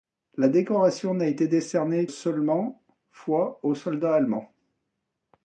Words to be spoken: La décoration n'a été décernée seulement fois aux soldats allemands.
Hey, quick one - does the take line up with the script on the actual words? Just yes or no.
yes